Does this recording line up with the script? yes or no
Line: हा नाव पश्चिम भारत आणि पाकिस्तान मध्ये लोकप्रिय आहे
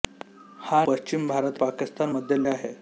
no